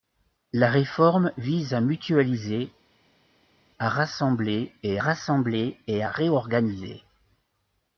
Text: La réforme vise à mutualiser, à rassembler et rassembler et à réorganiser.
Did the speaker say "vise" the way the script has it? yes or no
yes